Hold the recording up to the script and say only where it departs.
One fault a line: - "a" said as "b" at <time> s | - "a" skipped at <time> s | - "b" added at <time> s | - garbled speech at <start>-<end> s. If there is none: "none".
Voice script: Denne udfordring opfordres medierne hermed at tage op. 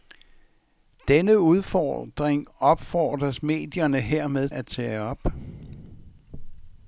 none